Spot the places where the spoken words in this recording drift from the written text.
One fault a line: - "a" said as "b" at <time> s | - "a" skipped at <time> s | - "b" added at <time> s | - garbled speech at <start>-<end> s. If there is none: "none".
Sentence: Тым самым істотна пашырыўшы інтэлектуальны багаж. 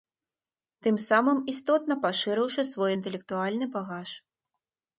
- "свой" added at 2.7 s